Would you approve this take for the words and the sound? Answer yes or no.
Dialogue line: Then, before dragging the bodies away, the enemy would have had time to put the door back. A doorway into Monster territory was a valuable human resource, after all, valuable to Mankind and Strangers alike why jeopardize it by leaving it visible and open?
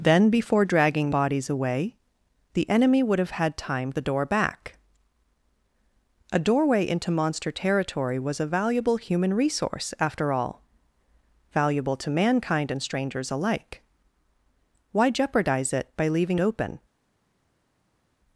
no